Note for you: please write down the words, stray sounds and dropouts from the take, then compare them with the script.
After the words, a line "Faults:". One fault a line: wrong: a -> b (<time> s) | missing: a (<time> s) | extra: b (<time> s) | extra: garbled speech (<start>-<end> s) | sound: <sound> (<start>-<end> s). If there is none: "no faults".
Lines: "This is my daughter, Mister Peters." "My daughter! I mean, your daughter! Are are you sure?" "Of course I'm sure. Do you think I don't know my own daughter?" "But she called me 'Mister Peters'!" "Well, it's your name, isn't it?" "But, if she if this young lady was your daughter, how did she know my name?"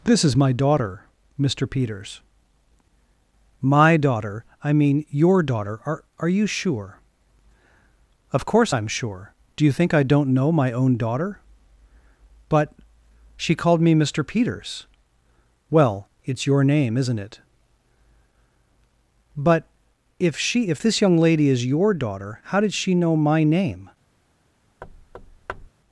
"This is my daughter, Mister Peters." "My daughter! I mean, your daughter! Are are you sure?" "Of course I'm sure. Do you think I don't know my own daughter?" "But she called me 'Mister Peters'!" "Well, it's your name, isn't it?" "But, if she if this young lady is your daughter, how did she know my name?"
Faults:
wrong: was -> is (21.5 s)
sound: thud (24.8-25.7 s)